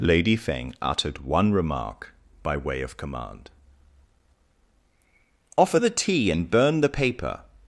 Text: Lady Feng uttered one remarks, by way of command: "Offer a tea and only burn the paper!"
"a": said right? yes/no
no